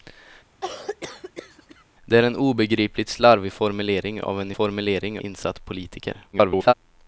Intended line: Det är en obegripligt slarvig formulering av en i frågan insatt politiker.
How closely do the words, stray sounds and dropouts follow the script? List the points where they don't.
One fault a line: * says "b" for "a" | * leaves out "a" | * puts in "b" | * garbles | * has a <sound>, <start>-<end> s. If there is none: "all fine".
* has a cough, 0.6-1.8 s
* says "formulering" for "frågan"
* garbles